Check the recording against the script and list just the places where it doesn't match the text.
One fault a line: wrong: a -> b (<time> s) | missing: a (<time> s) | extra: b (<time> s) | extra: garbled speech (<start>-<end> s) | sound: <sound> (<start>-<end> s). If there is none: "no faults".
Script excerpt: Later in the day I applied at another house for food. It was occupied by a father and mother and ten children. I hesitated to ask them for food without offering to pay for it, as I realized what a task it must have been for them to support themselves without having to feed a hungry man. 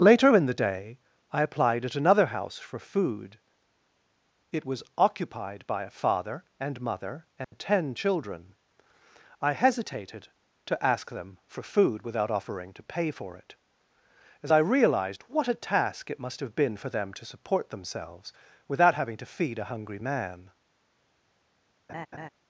sound: dropout (7.4-7.5 s)
sound: laugh (21.9-22.3 s)